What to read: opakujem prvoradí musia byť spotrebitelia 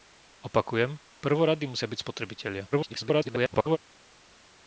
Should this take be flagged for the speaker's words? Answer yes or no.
yes